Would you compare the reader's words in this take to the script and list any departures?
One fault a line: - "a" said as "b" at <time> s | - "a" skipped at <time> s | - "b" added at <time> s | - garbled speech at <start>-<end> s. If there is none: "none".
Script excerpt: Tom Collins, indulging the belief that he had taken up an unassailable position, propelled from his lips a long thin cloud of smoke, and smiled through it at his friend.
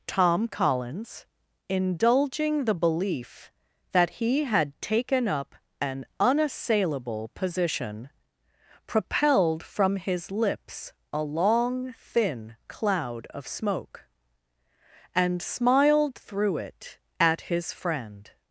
none